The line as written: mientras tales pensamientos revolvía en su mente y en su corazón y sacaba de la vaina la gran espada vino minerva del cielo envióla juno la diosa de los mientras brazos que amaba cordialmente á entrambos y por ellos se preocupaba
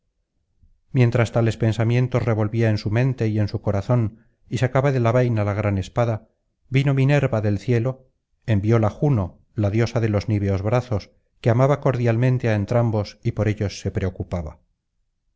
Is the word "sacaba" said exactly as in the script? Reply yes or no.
yes